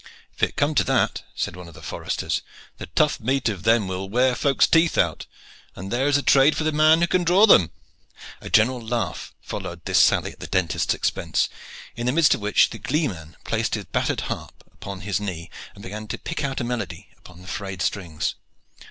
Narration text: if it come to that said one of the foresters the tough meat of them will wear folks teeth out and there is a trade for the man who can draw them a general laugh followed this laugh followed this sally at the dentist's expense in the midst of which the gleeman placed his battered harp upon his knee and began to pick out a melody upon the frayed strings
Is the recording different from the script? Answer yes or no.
yes